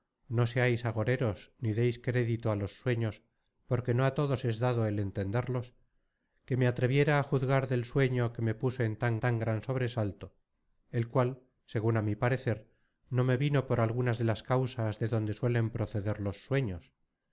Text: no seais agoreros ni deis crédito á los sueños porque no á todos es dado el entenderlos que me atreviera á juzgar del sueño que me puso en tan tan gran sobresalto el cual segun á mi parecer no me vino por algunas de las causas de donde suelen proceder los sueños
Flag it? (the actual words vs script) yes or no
no